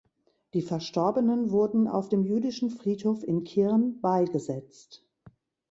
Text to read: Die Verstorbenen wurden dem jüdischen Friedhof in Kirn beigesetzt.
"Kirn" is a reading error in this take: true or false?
false